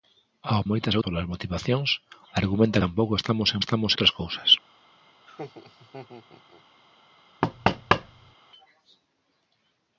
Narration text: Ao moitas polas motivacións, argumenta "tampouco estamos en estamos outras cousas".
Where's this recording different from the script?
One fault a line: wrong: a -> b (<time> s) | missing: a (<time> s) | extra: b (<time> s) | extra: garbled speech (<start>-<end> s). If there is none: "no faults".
no faults